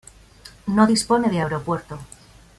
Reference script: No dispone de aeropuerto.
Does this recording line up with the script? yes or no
yes